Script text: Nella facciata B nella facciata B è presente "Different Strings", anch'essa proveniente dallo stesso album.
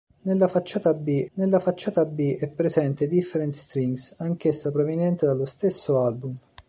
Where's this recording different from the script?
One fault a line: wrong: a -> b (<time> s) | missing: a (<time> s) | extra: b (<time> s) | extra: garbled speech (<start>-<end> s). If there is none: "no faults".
no faults